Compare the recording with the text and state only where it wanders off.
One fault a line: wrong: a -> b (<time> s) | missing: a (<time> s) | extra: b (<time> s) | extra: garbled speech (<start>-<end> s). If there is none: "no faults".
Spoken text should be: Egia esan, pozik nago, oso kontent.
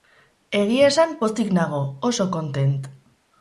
no faults